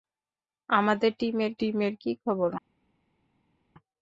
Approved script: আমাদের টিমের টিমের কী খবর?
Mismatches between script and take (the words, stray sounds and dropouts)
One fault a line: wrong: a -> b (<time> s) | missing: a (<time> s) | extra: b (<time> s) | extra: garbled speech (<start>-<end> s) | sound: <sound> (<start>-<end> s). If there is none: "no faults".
no faults